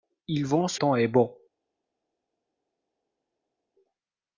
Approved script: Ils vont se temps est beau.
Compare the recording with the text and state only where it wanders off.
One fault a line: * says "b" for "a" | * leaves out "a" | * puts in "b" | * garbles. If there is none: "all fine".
all fine